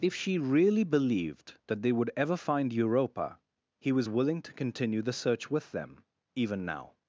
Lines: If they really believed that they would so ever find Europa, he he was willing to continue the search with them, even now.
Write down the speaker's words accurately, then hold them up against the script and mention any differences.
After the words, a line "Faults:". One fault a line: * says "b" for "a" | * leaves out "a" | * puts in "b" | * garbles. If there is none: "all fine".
If she really believed that they would ever find Europa, he was willing to continue the search with them, even now.
Faults:
* says "she" for "they"
* leaves out "so"
* leaves out "he"